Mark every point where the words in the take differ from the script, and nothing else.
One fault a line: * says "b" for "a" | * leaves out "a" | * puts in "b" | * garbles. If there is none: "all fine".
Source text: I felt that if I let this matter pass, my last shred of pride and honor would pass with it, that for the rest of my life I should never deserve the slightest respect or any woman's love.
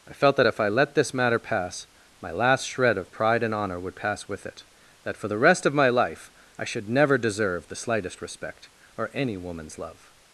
all fine